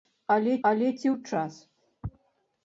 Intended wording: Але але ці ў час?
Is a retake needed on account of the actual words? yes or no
no